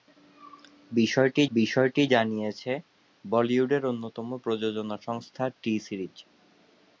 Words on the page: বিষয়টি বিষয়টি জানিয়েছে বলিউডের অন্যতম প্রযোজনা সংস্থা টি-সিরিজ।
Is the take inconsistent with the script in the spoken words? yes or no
no